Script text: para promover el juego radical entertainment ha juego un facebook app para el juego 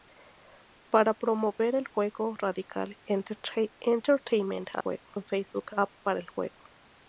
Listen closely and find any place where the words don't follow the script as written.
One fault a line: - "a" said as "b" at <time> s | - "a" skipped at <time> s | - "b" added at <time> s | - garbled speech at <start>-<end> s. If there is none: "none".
none